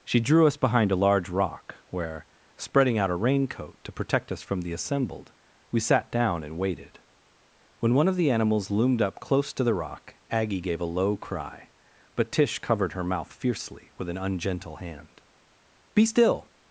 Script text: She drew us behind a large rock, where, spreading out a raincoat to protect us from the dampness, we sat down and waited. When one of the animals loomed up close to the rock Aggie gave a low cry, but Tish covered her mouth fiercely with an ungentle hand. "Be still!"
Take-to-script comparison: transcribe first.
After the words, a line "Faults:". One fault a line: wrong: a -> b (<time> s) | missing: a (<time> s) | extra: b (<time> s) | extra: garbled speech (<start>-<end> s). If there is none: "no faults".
She drew us behind a large rock, where, spreading out a raincoat to protect us from the assembled, we sat down and waited. When one of the animals loomed up close to the rock Aggie gave a low cry, but Tish covered her mouth fiercely with an ungentle hand. "Be still!"
Faults:
wrong: dampness -> assembled (4.7 s)